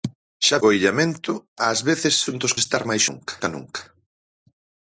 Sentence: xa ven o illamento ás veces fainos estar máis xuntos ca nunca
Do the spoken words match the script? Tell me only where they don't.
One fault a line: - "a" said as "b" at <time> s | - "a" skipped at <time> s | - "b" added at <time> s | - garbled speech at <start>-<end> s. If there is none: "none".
- "ven" skipped at 0.6 s
- "fainos" said as "xuntos" at 2.3 s
- "xuntos" said as "nunca" at 3.1 s